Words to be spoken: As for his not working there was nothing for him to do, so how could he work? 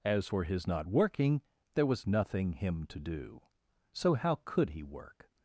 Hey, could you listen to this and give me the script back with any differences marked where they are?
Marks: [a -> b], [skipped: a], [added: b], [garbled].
As for his not working there was nothing [skipped: for] him to do, so how could he work?